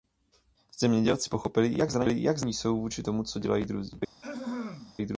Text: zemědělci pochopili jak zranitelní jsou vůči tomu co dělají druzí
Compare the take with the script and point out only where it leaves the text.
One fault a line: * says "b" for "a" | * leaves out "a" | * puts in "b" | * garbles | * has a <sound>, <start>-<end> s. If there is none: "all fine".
* has a throat clearing, 4.2-4.9 s